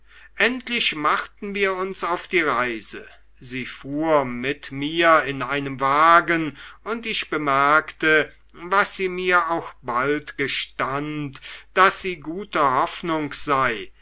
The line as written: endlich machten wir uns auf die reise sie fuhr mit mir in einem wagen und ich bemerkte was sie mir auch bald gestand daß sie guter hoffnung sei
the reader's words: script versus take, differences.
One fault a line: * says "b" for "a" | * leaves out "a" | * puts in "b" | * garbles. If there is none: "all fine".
all fine